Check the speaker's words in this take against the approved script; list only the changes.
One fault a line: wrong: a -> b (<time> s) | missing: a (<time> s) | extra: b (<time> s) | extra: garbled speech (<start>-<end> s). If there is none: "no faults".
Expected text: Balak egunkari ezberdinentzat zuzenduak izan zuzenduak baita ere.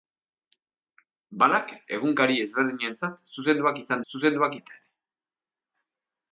no faults